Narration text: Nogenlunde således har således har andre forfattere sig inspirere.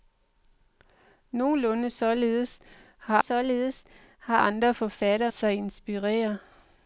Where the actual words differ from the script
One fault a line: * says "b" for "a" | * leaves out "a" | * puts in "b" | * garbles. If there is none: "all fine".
all fine